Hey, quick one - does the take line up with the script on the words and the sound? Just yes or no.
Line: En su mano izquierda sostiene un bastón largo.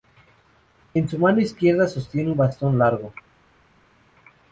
yes